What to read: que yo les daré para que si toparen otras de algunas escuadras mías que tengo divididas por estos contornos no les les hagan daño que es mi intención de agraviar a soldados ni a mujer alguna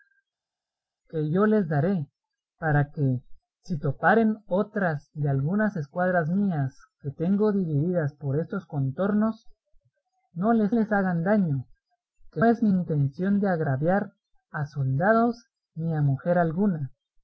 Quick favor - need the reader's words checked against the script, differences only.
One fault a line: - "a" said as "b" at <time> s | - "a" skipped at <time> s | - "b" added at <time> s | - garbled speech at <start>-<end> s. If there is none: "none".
none